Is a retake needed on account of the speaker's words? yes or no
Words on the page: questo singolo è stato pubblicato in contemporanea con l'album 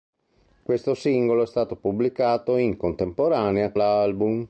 yes